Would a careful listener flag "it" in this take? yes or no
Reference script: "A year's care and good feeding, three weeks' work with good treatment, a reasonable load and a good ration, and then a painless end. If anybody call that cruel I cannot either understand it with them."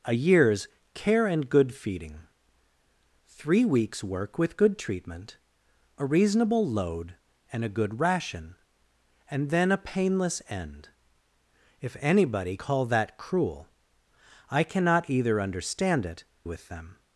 no